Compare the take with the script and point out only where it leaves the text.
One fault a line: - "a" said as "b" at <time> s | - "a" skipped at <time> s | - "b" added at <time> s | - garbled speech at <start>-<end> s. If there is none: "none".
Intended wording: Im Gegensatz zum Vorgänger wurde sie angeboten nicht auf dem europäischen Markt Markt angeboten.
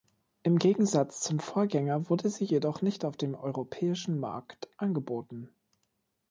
- "angeboten" said as "jedoch" at 2.4 s
- "Markt" skipped at 4.7 s